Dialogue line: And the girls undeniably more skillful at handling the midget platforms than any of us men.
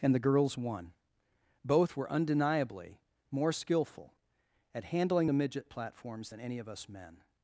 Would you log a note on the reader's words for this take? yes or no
yes